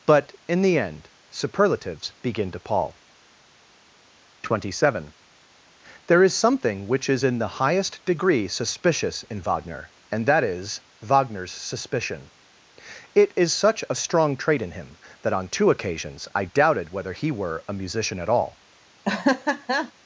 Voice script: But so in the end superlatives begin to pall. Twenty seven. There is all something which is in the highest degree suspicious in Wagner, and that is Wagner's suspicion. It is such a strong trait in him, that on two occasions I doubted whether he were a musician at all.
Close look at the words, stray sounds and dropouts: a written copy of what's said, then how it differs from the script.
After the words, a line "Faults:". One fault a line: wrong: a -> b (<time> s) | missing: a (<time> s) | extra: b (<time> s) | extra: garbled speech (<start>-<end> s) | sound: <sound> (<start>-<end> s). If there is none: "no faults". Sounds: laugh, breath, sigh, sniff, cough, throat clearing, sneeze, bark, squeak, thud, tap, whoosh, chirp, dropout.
But in the end superlatives begin to pall. Twenty seven. There is something which is in the highest degree suspicious in Wagner, and that is Wagner's suspicion. It is such a strong trait in him, that on two occasions I doubted whether he were a musician at all.
Faults:
missing: so (0.3 s)
missing: all (6.3 s)
sound: laugh (19.0-19.9 s)